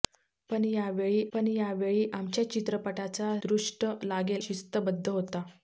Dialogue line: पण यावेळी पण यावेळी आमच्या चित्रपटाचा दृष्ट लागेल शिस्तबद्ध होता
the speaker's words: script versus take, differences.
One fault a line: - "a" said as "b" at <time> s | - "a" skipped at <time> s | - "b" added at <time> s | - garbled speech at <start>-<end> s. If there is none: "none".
none